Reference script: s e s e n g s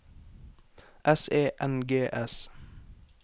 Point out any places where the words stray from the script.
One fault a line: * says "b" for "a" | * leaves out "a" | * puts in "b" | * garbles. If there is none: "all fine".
* leaves out "s e"